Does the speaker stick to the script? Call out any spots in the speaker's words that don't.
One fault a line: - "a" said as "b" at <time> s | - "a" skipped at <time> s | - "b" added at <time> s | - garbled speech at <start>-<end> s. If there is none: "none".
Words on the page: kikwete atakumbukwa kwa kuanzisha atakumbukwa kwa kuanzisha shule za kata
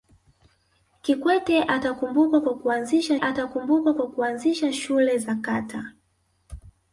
none